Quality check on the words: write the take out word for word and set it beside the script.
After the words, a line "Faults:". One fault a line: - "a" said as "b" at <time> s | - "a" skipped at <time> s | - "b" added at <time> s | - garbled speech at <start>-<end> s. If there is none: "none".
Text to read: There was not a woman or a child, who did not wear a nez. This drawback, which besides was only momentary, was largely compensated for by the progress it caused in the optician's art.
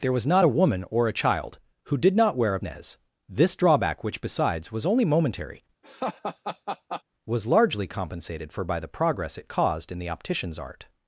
There was not a woman or a child, who did not wear a nez. This drawback, which besides was only momentary, was largely compensated for by the progress it caused in the optician's art.
Faults:
none